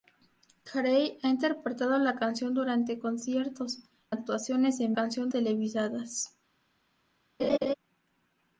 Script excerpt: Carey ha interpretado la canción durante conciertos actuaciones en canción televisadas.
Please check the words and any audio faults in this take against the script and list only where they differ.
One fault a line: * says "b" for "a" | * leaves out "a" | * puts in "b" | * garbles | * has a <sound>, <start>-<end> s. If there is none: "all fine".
* has a laugh, 7.4-7.7 s